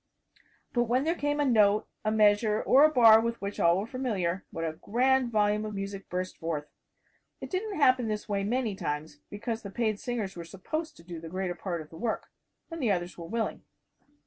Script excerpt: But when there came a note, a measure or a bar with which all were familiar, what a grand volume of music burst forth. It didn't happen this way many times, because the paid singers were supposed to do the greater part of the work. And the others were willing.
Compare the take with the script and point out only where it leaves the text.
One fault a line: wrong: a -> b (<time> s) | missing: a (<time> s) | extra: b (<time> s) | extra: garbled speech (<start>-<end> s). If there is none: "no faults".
no faults